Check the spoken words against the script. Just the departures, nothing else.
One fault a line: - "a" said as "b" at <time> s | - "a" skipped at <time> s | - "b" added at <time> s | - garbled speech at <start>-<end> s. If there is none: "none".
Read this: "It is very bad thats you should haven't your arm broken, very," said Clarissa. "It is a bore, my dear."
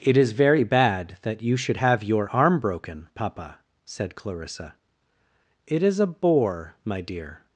- "thats" said as "that" at 1.2 s
- "haven't" said as "have" at 1.7 s
- "very" said as "papa" at 3.1 s